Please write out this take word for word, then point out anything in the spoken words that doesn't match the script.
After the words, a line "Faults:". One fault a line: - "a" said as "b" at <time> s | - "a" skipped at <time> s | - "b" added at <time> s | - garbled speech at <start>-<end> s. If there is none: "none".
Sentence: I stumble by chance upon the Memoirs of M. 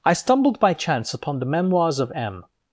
I stumbled by chance upon the Memoirs of M.
Faults:
- "stumble" said as "stumbled" at 0.1 s